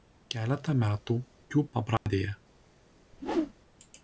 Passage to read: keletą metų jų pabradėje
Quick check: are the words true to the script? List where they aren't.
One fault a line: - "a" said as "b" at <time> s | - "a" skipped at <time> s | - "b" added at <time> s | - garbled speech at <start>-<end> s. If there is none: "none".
none